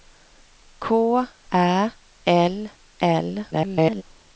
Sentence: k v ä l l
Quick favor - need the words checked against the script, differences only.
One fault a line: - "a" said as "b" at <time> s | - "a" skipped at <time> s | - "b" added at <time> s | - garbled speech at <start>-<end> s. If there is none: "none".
- "v" skipped at 0.9 s
- garbled speech at 3.5-4.0 s